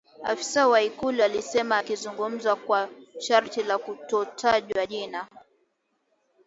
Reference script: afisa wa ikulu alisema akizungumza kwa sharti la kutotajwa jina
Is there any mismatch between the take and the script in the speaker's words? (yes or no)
no